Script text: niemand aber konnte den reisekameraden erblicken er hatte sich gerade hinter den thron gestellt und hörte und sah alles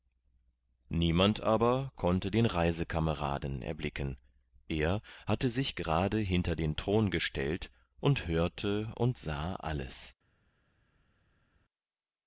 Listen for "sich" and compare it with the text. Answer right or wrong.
right